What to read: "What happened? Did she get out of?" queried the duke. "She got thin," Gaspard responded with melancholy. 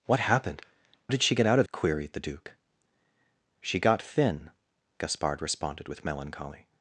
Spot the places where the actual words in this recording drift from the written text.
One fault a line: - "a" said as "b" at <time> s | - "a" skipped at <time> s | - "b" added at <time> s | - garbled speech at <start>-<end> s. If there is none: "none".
none